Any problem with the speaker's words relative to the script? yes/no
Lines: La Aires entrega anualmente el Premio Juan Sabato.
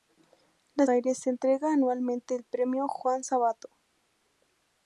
no